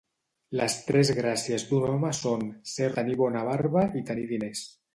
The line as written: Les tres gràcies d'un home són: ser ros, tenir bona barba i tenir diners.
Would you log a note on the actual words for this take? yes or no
yes